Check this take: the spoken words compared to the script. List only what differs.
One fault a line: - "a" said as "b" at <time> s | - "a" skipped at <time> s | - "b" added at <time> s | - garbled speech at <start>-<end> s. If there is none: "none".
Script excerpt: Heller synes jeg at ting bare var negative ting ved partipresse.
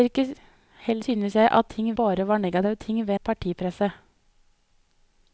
none